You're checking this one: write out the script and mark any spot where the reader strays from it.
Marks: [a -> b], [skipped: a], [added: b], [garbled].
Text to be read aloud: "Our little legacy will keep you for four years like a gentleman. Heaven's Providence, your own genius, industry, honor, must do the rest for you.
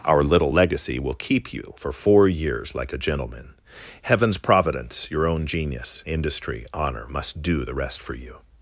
"Our little legacy will keep you for four years like a gentleman. Heaven's Providence, your own genius, industry, honor, must do the rest for you.